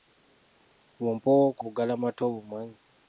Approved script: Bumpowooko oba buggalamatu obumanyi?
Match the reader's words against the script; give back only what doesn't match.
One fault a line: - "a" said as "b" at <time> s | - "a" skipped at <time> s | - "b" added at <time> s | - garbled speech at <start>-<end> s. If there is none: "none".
- "oba" skipped at 1.6 s